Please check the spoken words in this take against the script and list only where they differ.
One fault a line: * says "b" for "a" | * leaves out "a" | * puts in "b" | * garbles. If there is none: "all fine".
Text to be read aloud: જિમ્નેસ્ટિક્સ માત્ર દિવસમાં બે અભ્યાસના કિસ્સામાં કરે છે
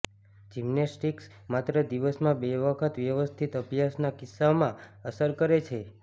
* puts in "વખત વ્યવસ્થિત"
* puts in "અસર"